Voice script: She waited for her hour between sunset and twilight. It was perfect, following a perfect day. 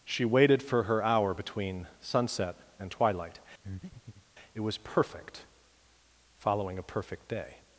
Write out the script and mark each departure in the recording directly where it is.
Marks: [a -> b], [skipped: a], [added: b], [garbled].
She waited for her hour between sunset and twilight. It was perfect, following a perfect day.